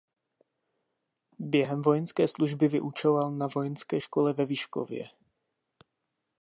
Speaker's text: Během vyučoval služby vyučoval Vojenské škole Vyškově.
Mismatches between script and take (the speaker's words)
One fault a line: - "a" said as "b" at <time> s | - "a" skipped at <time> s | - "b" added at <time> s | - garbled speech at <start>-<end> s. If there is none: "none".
- "vyučoval" said as "vojenské" at 1.8 s
- "na" added at 3.3 s
- "ve" added at 4.3 s